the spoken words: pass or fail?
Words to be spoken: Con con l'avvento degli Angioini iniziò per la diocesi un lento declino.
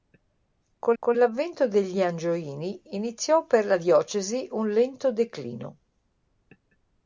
pass